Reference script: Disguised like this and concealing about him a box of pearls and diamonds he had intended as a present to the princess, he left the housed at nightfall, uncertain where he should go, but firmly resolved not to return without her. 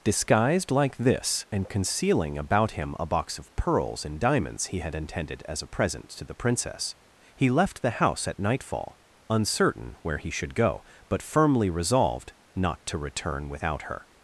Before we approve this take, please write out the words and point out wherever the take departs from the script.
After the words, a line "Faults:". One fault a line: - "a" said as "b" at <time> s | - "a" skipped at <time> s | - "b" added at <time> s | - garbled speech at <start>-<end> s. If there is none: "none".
Disguised like this and concealing about him a box of pearls and diamonds he had intended as a present to the princess, he left the house at nightfall, uncertain where he should go, but firmly resolved not to return without her.
Faults:
- "housed" said as "house" at 8.0 s